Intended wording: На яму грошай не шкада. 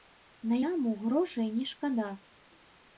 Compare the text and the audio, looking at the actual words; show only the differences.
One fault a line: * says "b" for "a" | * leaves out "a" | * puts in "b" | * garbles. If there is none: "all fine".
all fine